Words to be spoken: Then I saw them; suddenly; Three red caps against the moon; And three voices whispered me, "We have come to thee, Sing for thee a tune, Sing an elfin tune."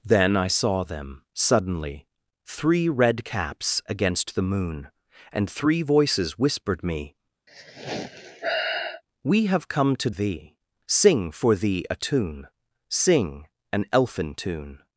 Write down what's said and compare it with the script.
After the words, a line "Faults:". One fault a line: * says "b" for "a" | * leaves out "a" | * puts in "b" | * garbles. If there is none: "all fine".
Then I saw them; suddenly; Three red caps against the moon; And three voices whispered me, "We have come to thee, Sing for thee a tune, Sing an elfin tune."
Faults:
all fine